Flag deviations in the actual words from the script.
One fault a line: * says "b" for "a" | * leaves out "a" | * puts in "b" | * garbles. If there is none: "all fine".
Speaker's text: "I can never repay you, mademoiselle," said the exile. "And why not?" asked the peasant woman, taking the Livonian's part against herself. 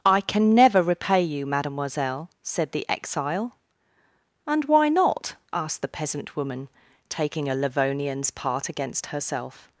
* says "a" for "the"